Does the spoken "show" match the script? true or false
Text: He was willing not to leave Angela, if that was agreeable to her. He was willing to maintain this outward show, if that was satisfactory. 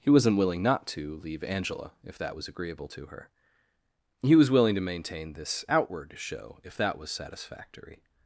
true